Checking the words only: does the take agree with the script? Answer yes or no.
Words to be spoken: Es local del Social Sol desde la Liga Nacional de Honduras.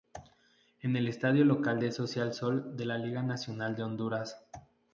no